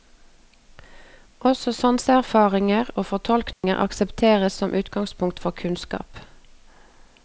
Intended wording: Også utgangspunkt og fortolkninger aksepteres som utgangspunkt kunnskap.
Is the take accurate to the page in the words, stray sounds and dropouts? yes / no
no